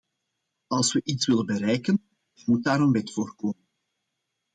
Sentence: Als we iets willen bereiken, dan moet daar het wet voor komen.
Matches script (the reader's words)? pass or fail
fail